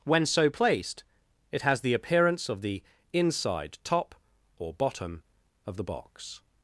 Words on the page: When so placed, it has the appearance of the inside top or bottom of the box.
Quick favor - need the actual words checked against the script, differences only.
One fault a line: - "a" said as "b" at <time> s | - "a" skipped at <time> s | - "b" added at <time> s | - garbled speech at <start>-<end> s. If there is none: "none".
none